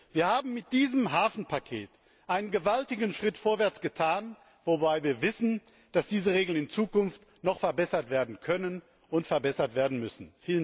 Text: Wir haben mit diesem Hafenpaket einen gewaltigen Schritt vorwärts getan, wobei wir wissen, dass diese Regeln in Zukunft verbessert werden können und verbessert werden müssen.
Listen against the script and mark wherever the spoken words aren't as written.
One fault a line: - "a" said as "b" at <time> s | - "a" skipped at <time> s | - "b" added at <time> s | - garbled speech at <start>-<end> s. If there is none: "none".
- "noch" added at 7.4 s